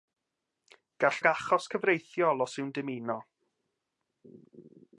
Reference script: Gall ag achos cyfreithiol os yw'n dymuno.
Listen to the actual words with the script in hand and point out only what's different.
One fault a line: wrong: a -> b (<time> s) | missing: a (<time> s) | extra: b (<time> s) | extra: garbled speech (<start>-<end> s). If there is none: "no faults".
no faults